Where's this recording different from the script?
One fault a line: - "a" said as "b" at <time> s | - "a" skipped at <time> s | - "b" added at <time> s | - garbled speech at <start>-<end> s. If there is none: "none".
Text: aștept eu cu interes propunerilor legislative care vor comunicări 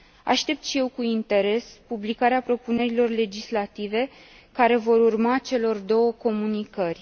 - "și" added at 0.6 s
- "publicarea" added at 1.9 s
- "urma celor două" added at 5.0 s